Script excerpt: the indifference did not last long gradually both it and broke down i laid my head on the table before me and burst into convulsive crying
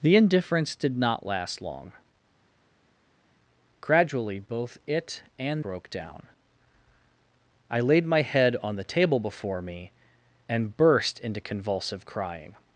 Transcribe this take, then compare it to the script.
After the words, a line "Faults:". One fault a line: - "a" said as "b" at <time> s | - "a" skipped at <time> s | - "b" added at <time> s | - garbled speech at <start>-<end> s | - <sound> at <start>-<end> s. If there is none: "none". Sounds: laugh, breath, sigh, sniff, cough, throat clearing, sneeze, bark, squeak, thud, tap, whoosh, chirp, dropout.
the indifference did not last long gradually both it and broke down i laid my head on the table before me and burst into convulsive crying
Faults:
none